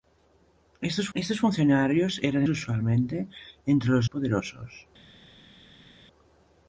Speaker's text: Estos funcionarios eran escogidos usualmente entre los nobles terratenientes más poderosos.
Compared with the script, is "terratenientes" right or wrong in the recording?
wrong